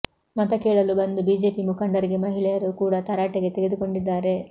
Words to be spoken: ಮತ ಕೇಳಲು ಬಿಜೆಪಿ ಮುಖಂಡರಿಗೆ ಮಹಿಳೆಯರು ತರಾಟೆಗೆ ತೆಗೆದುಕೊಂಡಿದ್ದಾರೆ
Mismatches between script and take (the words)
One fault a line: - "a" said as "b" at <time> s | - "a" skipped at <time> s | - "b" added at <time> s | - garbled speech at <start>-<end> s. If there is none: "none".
- "ಬಂದು" added at 1.0 s
- "ಕೂಡ" added at 2.8 s